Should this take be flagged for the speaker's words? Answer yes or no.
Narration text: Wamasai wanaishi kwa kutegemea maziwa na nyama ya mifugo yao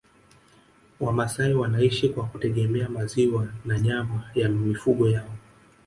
no